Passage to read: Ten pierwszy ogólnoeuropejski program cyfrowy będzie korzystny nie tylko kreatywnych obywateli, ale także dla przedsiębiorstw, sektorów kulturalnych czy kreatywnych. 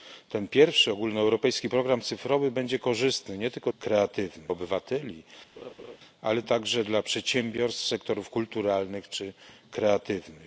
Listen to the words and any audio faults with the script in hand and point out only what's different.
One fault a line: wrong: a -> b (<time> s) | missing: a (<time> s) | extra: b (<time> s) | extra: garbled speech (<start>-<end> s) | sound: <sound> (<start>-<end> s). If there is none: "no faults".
sound: laugh (5.6-6.0 s)